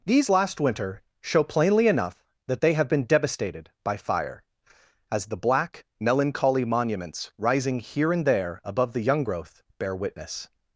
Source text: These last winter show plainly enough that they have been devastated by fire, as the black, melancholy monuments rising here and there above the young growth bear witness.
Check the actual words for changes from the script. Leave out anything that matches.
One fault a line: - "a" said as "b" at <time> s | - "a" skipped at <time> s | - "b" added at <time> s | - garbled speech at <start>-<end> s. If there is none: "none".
none